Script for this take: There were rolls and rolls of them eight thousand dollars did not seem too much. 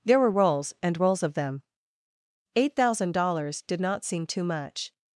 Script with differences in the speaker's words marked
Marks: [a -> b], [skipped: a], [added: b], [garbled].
There were rolls and rolls of them eight thousand dollars did not seem too much.